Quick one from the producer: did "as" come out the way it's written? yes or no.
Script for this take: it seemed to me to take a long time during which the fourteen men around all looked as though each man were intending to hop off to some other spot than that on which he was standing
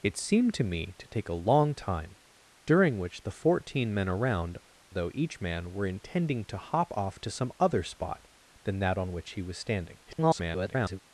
no